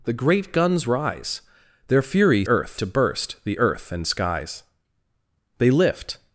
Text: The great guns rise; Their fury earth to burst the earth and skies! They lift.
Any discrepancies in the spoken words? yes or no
no